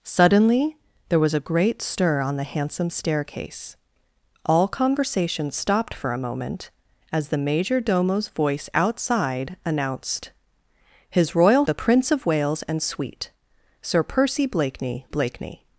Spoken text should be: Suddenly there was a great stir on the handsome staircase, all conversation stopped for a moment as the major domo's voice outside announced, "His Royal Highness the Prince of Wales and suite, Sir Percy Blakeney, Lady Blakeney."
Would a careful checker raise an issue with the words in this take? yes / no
yes